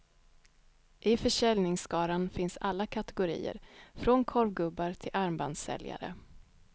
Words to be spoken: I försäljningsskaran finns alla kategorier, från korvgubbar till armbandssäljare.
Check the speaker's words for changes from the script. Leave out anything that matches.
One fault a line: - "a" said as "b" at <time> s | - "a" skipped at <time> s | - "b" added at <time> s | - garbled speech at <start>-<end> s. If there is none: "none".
none